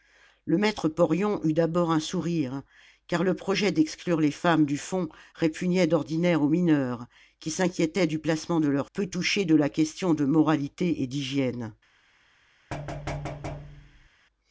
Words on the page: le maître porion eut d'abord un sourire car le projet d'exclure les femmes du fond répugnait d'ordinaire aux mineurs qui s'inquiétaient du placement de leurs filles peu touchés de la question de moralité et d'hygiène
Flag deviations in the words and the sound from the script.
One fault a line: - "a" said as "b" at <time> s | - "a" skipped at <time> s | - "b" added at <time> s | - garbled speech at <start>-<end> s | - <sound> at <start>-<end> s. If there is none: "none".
- "filles" skipped at 8.9 s
- thud at 12.7-14.1 s